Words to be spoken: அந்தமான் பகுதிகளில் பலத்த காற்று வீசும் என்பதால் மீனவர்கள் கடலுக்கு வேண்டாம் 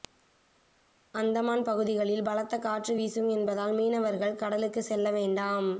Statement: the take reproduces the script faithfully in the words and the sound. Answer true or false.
false